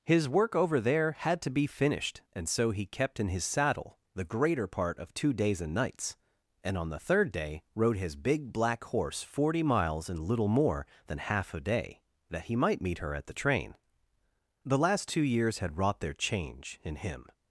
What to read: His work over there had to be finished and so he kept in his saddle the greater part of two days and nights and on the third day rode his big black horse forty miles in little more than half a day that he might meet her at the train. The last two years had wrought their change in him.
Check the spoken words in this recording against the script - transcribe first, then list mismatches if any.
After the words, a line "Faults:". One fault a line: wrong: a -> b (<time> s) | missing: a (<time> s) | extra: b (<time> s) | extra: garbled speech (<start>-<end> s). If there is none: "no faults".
His work over there had to be finished and so he kept in his saddle the greater part of two days and nights and on the third day rode his big black horse forty miles in little more than half a day that he might meet her at the train. The last two years had wrought their change in him.
Faults:
no faults